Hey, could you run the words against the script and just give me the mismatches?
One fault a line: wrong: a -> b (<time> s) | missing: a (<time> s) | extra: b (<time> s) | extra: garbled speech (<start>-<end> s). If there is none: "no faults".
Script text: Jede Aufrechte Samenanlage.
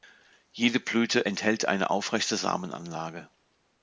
extra: Blüte enthält eine (0.8 s)